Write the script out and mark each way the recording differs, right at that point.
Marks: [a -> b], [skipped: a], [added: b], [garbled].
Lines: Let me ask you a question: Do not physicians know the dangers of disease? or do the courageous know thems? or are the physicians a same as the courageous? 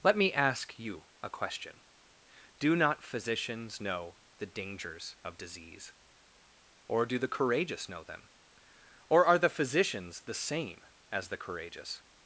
Let me ask you a question: Do not physicians know the dangers of disease? or do the courageous know [thems? -> them] or are the physicians [a -> the] same as the courageous?